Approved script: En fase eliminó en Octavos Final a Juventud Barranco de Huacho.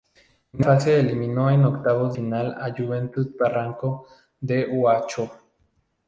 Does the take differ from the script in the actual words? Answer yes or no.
no